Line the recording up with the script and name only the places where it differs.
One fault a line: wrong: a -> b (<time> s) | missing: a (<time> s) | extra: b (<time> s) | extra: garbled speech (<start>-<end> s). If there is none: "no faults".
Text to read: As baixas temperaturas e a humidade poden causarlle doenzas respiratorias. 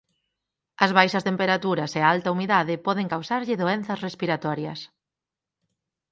extra: alta (2.1 s)